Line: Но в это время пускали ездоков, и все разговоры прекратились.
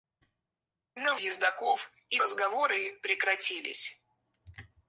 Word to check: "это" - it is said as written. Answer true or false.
false